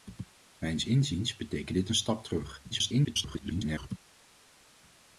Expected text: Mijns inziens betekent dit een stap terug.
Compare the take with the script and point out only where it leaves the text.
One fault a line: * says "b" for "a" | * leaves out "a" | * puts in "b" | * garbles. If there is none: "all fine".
* garbles